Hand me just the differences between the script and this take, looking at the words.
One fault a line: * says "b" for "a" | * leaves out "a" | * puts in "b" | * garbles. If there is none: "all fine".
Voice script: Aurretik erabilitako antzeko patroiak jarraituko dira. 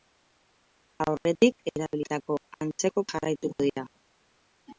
* leaves out "patroiak"